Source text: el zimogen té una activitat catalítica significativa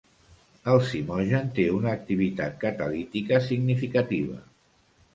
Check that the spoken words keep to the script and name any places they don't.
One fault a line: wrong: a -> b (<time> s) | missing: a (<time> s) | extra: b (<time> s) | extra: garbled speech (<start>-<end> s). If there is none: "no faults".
no faults